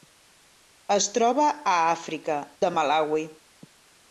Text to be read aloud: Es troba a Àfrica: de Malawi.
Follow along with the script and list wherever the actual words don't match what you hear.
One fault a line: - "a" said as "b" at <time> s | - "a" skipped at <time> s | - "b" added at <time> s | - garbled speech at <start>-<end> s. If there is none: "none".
none